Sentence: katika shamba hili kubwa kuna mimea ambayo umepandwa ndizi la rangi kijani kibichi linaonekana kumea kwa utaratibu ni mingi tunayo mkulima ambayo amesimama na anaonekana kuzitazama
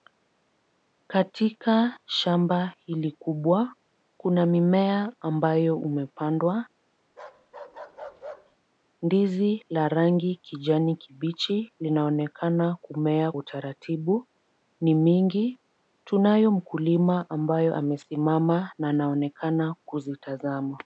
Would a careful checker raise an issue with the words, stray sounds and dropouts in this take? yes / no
yes